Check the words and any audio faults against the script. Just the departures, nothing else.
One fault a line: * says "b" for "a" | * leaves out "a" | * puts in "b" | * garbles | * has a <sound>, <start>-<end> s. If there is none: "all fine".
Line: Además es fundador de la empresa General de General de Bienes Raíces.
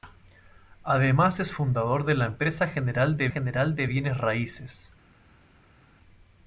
all fine